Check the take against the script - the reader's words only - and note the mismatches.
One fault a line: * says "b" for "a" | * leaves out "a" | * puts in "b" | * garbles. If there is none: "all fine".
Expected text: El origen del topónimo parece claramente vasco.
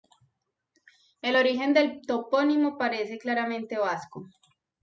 all fine